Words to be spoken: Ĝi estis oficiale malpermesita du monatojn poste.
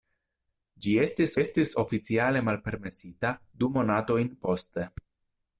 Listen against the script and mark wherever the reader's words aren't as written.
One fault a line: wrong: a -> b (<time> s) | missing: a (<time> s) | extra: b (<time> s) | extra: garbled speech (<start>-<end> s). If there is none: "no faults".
extra: estis (1.4 s)